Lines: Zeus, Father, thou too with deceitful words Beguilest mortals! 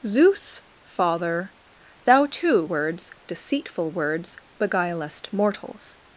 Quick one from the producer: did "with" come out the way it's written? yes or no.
no